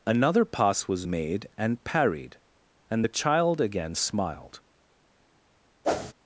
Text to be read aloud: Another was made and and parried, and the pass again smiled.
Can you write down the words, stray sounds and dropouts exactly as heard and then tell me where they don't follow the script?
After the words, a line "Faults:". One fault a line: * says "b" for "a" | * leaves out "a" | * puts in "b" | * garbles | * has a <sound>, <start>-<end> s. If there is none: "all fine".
Another pass was made and parried, and the child again smiled.
Faults:
* puts in "pass"
* leaves out "and"
* says "child" for "pass"
* has a whoosh, 5.8-6.1 s